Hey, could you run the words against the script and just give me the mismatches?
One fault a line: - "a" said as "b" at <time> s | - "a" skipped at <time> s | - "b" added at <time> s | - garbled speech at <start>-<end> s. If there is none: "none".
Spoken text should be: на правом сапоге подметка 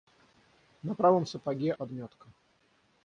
none